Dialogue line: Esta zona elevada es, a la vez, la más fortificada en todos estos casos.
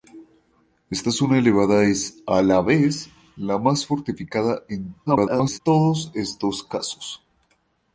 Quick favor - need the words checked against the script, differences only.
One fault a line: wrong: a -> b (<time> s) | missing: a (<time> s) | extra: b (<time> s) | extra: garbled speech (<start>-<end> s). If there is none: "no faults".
extra: garbled speech (5.1-5.6 s)